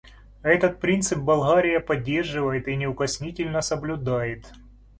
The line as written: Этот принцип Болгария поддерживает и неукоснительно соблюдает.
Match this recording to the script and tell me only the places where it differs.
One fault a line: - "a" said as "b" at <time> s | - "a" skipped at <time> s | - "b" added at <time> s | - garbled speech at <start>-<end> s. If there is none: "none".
none